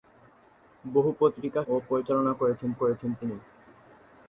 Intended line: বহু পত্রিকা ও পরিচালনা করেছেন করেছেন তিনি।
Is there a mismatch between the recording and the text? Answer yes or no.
no